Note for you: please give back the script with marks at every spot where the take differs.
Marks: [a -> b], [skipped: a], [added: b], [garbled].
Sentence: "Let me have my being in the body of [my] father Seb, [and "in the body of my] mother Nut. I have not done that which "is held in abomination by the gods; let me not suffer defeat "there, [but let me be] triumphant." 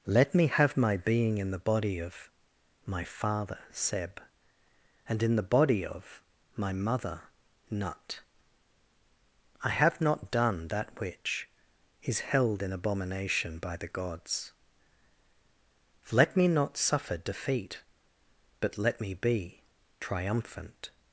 "Let me have my being in the body of [my] father Seb, [and "in the body of my] mother Nut. I have not done that which "is held in abomination by the gods; let me not suffer defeat [skipped: "there,] [but let me be] triumphant."